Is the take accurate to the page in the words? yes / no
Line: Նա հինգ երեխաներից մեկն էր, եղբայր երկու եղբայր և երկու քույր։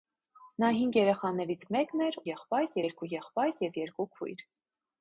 yes